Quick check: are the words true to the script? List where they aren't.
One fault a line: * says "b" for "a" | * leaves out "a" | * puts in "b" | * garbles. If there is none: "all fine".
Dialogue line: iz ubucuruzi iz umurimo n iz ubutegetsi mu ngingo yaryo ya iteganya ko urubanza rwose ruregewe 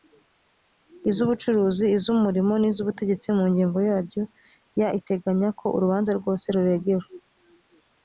all fine